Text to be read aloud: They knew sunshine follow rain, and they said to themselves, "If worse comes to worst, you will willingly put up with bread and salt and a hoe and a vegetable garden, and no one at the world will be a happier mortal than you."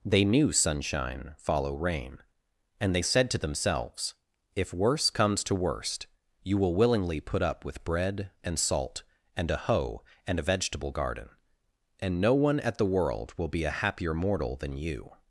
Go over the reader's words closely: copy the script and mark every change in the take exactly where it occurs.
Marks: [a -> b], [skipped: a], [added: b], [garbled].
They knew sunshine follow rain, and they said to themselves, "If worse comes to worst, you will willingly put up with bread and salt and a hoe and a vegetable garden, and no one at the world will be a happier mortal than you."